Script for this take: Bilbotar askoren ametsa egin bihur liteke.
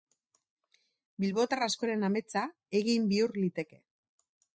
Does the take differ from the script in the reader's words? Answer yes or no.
no